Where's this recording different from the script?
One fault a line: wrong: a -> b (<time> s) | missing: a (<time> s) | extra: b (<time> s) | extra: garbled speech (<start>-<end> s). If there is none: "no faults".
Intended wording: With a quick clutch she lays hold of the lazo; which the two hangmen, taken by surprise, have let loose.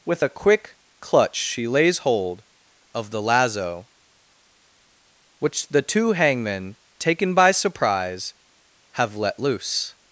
no faults